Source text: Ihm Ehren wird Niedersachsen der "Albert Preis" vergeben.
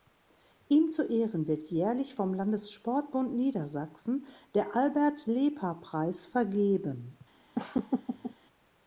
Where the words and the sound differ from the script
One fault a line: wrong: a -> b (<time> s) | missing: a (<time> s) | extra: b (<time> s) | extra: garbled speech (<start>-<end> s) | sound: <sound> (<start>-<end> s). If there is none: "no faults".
extra: zu (0.9 s)
extra: jährlich vom Landessportbund (1.7 s)
extra: Lepa (5.3 s)
sound: laugh (7.5-8.3 s)